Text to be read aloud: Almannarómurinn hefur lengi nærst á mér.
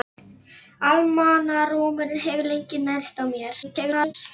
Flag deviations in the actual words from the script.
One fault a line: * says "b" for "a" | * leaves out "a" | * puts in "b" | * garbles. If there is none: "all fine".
* garbles